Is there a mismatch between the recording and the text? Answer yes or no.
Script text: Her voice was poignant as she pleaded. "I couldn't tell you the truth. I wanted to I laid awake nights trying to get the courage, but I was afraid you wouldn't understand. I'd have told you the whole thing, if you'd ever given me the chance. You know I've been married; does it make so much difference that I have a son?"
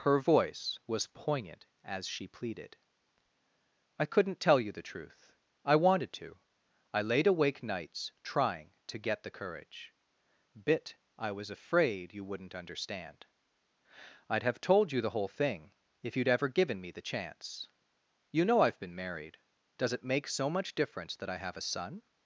yes